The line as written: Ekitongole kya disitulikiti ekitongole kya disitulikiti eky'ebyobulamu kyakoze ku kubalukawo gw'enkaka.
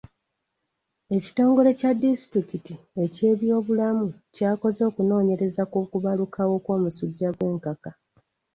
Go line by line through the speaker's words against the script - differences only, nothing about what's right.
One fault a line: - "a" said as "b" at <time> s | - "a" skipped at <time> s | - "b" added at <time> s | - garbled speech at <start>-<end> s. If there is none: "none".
- "ekitongole kya disitulikiti" skipped at 2.7 s
- "okunoonyereza" added at 4.9 s
- "kw'omusujja" added at 6.6 s